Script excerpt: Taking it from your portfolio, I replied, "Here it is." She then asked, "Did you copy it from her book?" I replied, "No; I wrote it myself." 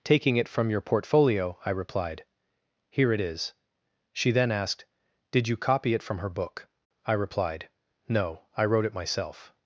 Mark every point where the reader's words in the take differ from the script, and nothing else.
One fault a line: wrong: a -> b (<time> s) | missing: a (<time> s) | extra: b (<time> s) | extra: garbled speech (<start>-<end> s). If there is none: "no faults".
no faults